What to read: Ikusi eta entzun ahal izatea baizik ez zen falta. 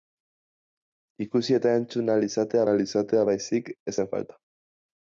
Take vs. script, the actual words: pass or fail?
fail